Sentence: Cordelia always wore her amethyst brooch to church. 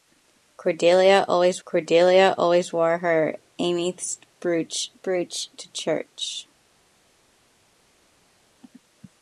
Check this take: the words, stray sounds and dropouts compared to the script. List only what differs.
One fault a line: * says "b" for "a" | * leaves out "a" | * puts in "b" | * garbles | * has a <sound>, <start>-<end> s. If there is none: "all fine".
* puts in "cordelia always"
* puts in "brooch"